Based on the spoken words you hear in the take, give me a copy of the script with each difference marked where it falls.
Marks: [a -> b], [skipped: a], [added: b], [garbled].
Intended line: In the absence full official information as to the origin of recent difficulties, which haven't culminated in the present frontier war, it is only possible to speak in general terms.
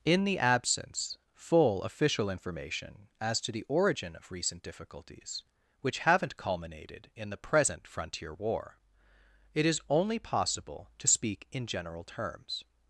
In the absence full official information as to the origin of recent difficulties, which haven't culminated in the present frontier war, it is only possible to speak in general terms.